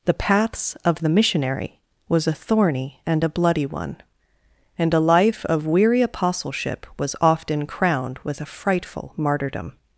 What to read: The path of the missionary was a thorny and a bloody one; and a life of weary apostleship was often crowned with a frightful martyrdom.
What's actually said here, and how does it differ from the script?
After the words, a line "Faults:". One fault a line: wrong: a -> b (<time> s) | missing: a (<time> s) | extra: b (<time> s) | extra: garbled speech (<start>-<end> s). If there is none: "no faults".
The paths of the missionary was a thorny and a bloody one; and a life of weary apostleship was often crowned with a frightful martyrdom.
Faults:
wrong: path -> paths (0.1 s)